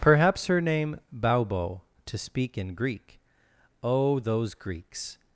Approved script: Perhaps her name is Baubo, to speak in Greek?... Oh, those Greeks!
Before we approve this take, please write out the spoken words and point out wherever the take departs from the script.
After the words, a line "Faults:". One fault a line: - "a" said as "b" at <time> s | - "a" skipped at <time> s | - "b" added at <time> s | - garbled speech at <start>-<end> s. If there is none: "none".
Perhaps her name Baubo, to speak in Greek?... Oh, those Greeks!
Faults:
- "is" skipped at 1.0 s